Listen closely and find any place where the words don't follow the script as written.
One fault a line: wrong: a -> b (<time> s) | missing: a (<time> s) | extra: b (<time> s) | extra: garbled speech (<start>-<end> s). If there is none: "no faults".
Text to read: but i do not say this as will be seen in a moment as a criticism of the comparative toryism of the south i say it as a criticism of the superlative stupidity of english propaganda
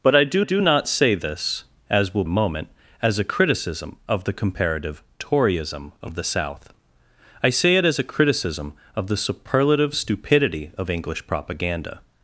extra: do (0.4 s)
missing: be seen in (2.2 s)